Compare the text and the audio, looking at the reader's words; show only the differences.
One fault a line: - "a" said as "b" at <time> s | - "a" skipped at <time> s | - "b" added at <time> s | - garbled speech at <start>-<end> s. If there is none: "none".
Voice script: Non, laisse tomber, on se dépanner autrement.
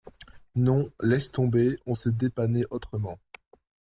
none